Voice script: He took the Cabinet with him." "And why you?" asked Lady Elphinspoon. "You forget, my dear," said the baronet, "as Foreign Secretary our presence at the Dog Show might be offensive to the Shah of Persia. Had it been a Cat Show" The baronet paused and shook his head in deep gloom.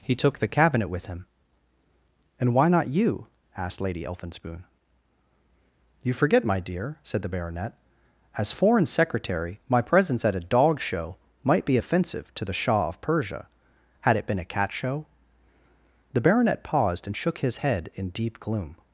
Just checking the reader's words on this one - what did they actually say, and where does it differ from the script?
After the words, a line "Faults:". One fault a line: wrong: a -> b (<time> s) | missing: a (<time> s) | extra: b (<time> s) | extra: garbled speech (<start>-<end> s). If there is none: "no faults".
He took the Cabinet with him." "And why not you?" asked Lady Elphinspoon. "You forget, my dear," said the baronet, "as Foreign Secretary my presence at a Dog Show might be offensive to the Shah of Persia. Had it been a Cat Show" The baronet paused and shook his head in deep gloom.
Faults:
extra: not (2.7 s)
wrong: our -> my (9.7 s)
wrong: the -> a (10.3 s)